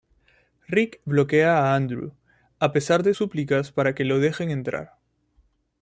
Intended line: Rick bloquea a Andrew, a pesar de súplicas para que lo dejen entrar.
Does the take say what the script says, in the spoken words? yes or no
yes